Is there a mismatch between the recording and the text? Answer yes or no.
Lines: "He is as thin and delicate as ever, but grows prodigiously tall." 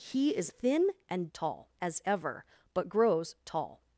yes